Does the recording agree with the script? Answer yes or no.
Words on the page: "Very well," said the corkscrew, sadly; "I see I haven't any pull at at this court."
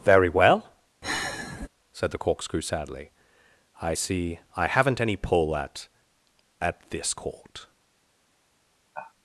yes